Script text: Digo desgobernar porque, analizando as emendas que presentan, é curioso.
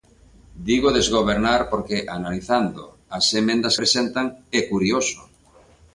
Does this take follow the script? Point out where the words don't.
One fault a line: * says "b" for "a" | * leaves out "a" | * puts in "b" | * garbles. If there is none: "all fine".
* leaves out "que"